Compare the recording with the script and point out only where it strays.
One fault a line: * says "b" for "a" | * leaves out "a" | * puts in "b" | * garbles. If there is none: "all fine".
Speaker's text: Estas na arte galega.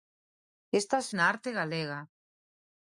all fine